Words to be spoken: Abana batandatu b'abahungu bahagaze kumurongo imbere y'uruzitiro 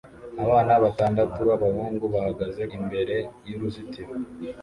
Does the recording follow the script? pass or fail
fail